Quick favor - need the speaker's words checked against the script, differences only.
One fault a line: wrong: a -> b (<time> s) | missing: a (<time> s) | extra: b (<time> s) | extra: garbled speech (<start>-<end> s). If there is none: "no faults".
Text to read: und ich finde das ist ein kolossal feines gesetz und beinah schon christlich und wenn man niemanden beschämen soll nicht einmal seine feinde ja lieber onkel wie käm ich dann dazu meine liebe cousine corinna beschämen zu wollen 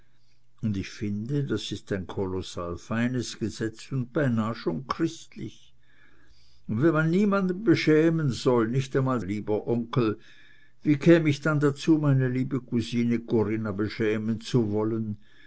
missing: seine feinde ja (9.2 s)